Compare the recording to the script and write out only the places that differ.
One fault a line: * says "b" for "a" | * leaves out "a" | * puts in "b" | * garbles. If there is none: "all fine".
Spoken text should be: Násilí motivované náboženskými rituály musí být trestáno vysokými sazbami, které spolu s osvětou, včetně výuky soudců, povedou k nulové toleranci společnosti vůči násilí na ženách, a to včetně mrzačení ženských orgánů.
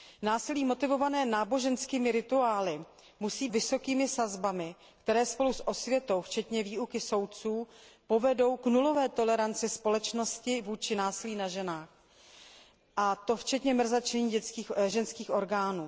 * leaves out "být trestáno"